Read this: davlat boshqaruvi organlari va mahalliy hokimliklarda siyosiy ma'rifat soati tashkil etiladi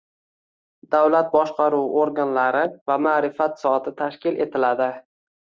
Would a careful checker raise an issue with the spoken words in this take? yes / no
yes